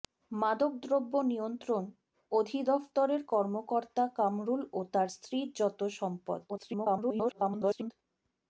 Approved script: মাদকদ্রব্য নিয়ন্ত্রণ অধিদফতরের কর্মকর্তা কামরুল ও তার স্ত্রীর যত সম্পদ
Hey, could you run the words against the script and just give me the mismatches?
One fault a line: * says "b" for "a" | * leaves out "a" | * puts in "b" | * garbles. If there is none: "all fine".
* garbles